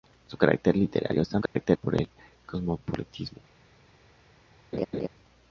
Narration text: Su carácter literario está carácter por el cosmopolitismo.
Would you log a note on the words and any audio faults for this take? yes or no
yes